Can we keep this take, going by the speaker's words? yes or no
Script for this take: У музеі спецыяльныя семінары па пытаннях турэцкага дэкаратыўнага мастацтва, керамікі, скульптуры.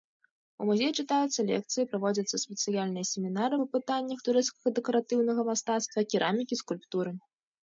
no